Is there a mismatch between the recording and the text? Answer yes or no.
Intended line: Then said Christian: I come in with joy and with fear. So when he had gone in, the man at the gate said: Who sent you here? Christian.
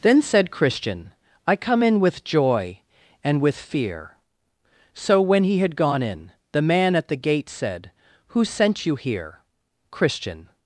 no